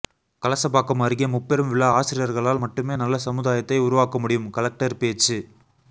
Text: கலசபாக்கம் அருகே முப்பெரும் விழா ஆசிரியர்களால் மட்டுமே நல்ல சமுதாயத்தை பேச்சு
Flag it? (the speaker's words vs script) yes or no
yes